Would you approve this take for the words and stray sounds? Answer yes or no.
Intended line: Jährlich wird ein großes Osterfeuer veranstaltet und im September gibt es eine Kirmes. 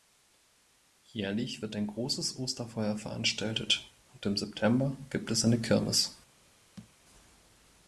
no